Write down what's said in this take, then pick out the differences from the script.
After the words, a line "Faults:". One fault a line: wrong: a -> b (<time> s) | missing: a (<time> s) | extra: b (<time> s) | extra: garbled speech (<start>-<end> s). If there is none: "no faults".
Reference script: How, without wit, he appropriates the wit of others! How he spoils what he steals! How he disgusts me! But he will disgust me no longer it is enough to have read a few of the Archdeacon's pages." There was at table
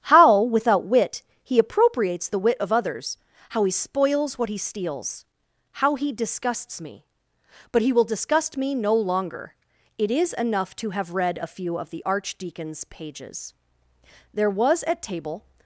How, without wit, he appropriates the wit of others! How he spoils what he steals! How he disgusts me! But he will disgust me no longer it is enough to have read a few of the Archdeacon's pages." There was at table
Faults:
no faults